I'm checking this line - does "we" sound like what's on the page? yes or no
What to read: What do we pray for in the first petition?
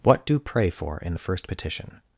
no